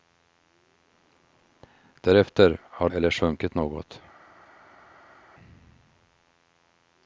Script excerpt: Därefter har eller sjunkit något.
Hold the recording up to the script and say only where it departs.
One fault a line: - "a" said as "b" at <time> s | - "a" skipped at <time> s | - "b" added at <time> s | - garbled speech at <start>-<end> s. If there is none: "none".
none